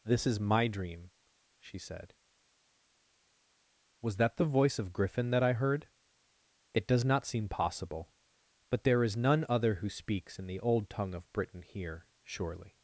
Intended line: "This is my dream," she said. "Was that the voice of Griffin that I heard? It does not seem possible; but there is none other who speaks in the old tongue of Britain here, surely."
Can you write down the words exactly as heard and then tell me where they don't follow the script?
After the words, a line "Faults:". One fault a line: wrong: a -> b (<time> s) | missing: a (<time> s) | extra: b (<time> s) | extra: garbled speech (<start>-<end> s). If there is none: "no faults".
"This is my dream," she said. "Was that the voice of Griffin that I heard? It does not seem possible; but there is none other who speaks in the old tongue of Britain here, surely."
Faults:
no faults